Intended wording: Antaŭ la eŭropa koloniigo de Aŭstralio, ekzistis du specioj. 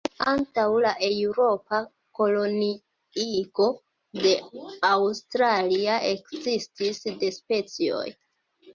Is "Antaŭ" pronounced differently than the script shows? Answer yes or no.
no